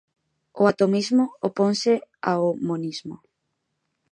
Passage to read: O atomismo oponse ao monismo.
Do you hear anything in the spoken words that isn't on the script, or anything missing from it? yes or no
no